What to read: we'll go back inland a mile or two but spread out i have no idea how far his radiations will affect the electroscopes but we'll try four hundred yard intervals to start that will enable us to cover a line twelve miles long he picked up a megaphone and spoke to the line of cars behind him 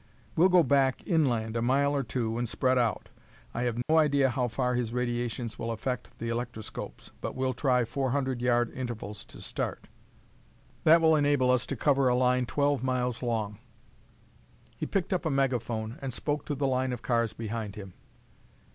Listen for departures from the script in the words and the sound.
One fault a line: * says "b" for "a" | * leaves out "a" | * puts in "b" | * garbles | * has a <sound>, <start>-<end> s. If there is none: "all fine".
* says "and" for "but"
* has a dropout, 3.8-3.9 s